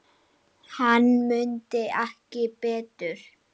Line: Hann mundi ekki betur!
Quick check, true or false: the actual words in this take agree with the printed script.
true